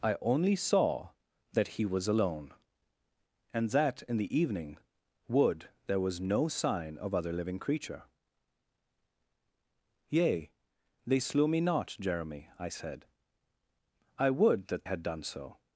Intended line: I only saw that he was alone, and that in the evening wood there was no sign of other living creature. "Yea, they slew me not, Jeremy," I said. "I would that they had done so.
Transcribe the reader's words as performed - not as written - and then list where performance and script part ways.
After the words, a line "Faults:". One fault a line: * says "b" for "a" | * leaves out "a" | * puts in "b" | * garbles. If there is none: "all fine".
I only saw that he was alone, and that in the evening wood there was no sign of other living creature. "Yea, they slew me not, Jeremy," I said. "I would that had done so.
Faults:
* leaves out "they"